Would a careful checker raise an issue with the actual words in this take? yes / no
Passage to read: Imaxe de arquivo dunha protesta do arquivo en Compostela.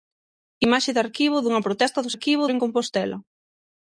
no